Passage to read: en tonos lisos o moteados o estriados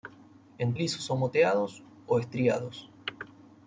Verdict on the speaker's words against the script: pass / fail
fail